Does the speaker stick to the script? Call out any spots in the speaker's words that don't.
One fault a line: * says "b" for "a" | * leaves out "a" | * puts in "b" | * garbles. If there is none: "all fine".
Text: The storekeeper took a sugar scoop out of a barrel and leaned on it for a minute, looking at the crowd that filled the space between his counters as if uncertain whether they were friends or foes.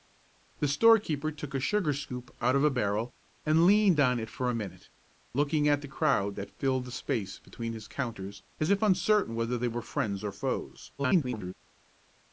* garbles